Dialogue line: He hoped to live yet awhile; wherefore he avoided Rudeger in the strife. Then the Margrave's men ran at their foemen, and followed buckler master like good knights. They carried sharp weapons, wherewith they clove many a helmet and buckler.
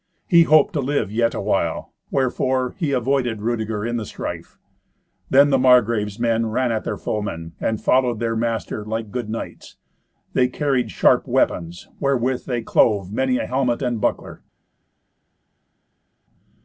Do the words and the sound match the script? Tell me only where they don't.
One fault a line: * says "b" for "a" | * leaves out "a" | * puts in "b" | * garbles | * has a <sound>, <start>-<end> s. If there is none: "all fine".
* says "their" for "buckler"